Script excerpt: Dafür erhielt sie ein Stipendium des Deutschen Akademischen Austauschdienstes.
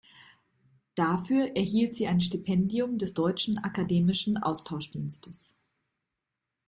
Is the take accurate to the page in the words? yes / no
yes